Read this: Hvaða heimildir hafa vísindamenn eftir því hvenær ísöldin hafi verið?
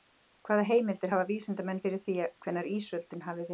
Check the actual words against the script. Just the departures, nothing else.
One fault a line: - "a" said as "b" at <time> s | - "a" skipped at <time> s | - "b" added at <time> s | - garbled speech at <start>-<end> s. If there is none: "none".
- "eftir" said as "fyrir" at 1.9 s